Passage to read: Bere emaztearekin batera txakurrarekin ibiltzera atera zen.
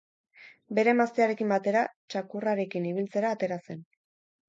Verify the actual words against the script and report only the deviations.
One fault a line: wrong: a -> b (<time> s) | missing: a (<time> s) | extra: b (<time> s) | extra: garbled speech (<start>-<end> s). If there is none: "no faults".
no faults